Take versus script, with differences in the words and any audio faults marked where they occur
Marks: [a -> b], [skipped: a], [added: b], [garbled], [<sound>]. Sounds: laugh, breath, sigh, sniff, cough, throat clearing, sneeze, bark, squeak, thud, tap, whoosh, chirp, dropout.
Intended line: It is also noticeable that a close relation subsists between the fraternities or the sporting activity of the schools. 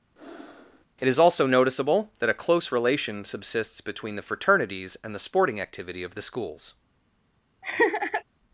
[breath] It is also noticeable that a close relation subsists between the fraternities [or -> and] the sporting activity of the schools. [laugh]